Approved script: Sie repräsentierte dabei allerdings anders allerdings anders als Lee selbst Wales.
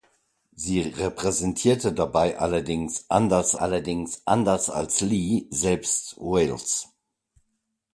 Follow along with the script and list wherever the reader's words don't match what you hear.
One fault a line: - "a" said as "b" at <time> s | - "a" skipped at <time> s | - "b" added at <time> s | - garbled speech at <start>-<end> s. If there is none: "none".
none